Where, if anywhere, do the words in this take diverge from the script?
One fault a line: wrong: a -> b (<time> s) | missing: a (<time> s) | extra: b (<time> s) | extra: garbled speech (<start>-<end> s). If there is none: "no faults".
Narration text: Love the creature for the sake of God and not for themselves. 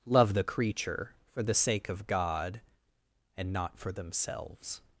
no faults